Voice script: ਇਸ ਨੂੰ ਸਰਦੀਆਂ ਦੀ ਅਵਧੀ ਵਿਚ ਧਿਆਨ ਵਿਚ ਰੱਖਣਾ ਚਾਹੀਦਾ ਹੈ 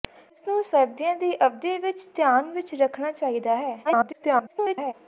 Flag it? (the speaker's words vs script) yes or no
yes